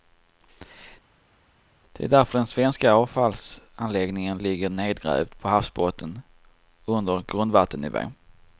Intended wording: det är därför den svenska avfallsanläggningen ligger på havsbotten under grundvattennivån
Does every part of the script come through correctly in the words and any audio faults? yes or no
no